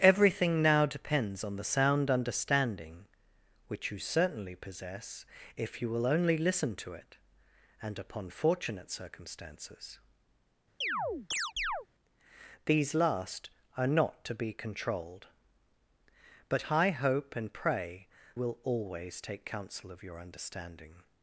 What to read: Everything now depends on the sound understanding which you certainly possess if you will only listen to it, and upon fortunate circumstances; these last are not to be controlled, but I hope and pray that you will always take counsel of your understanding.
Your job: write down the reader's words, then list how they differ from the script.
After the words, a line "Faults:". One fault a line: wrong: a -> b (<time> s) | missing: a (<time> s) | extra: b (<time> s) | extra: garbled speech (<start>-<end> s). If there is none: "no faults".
Everything now depends on the sound understanding which you certainly possess if you will only listen to it, and upon fortunate circumstances; these last are not to be controlled, but I hope and pray will always take counsel of your understanding.
Faults:
missing: that you (18.1 s)